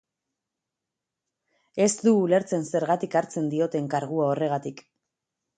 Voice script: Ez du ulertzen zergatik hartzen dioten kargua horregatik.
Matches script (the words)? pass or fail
pass